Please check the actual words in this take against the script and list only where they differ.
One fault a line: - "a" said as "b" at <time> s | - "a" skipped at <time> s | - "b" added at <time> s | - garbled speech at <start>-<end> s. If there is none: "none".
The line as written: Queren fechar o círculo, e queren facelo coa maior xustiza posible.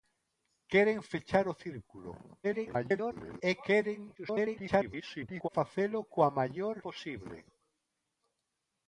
- garbled speech at 2.4-3.4 s
- garbled speech at 4.2-5.5 s
- "xustiza" skipped at 6.8 s